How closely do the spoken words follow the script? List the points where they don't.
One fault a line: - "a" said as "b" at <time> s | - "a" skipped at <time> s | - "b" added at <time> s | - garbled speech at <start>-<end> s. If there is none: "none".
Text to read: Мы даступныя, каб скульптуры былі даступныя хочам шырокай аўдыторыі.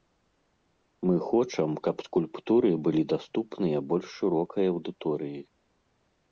- "даступныя" said as "хочам" at 1.3 s
- "хочам" said as "больш" at 3.9 s